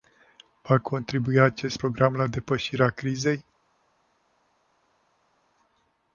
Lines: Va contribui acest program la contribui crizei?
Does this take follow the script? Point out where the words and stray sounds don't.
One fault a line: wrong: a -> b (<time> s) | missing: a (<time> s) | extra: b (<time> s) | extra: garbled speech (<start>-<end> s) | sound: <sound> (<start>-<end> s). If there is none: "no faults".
wrong: contribui -> depășirea (2.3 s)